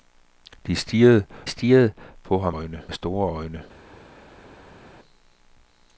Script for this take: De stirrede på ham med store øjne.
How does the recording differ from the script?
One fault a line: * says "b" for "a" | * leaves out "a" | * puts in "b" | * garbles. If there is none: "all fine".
* puts in "stirrede"
* says "øjne" for "med"